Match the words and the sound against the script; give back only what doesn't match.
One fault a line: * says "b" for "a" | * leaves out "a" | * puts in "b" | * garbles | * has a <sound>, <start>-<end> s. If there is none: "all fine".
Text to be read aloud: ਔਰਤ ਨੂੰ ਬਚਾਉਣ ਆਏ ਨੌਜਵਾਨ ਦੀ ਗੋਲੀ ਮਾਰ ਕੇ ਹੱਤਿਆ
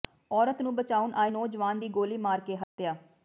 * has a dropout, 2.6-2.8 s